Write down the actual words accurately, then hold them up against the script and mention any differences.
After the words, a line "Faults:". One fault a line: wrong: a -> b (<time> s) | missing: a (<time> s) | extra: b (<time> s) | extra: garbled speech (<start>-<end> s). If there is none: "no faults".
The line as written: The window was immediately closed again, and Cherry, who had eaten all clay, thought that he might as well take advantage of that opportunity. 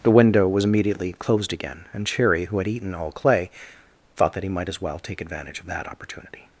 The window was immediately closed again, and Cherry, who had eaten all clay, thought that he might as well take advantage of that opportunity.
Faults:
no faults